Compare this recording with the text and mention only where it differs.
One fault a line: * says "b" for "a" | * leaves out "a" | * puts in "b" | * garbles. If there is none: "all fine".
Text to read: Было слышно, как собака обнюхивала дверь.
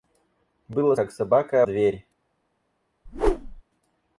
* leaves out "слышно"
* leaves out "обнюхивала"